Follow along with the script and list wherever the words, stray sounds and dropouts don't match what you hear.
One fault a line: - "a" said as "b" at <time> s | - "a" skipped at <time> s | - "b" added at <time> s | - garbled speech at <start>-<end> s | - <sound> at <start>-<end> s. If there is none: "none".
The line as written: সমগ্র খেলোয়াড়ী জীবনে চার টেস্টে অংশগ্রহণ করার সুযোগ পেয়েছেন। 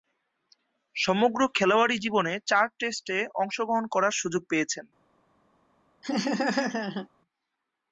- laugh at 6.0-7.1 s